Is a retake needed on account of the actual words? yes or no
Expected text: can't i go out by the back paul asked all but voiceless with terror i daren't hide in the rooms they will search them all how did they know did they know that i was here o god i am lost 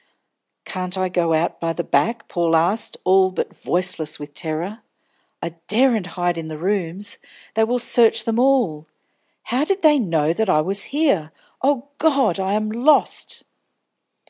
yes